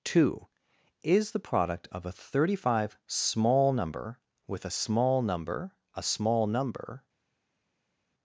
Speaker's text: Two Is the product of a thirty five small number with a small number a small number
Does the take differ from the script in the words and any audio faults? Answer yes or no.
no